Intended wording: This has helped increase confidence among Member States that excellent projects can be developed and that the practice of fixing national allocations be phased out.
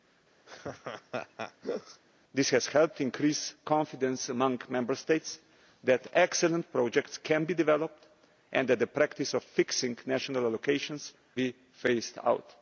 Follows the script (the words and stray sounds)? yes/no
no